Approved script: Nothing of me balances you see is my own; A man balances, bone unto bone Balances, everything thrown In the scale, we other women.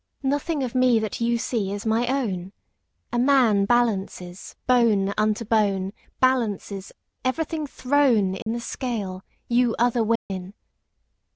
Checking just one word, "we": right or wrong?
wrong